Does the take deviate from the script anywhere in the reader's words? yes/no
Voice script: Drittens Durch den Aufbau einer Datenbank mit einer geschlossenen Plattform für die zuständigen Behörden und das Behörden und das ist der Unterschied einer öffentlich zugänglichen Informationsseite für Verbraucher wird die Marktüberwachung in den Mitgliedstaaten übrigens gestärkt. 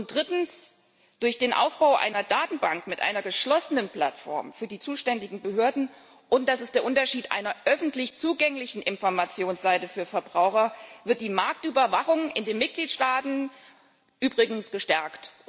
yes